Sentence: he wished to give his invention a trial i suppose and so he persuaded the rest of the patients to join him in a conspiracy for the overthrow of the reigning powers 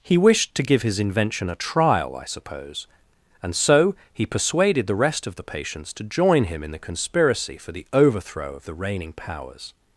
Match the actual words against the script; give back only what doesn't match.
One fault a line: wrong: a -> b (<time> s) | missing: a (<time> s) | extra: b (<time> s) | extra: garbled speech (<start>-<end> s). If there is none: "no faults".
wrong: a -> the (6.7 s)